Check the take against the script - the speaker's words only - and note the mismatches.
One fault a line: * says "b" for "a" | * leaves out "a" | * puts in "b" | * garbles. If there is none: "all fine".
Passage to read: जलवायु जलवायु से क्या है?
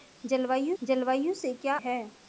all fine